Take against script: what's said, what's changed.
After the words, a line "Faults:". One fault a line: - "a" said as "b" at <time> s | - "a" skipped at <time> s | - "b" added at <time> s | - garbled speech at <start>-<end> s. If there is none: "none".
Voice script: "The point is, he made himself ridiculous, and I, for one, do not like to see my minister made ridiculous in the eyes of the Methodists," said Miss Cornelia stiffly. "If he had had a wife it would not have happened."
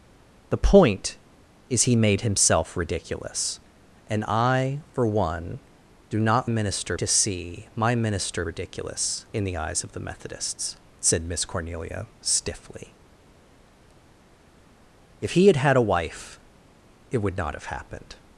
"The point is, he made himself ridiculous, and I, for one, do not minister to see my minister ridiculous in the eyes of the Methodists," said Miss Cornelia stiffly. "If he had had a wife it would not have happened."
Faults:
- "like" said as "minister" at 6.5 s
- "made" skipped at 8.5 s